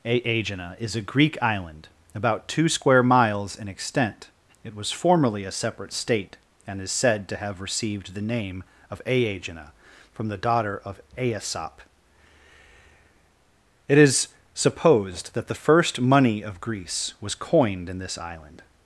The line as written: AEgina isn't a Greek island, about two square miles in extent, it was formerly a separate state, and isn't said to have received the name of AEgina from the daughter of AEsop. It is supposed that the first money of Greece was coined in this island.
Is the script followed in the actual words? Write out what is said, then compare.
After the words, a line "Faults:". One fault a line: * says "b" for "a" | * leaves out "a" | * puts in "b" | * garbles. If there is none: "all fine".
AEgina is a Greek island, about two square miles in extent, it was formerly a separate state, and is said to have received the name of AEgina from the daughter of AEsop. It is supposed that the first money of Greece was coined in this island.
Faults:
* says "is" for "isn't"
* says "is" for "isn't"